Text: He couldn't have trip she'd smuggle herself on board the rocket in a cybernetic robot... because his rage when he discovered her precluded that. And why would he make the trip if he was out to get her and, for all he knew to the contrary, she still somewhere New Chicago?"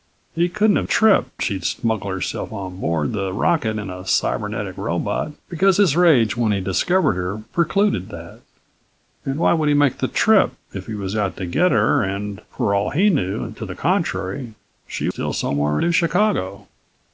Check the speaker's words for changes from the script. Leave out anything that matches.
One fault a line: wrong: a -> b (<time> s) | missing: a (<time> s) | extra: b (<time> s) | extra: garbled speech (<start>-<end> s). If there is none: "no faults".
no faults